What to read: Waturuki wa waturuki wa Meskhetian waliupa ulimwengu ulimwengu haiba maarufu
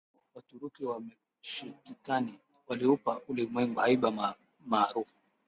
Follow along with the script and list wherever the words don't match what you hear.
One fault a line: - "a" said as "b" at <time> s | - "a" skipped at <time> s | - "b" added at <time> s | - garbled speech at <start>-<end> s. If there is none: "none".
- "waturuki wa" skipped at 1.0 s
- "ulimwengu" skipped at 3.8 s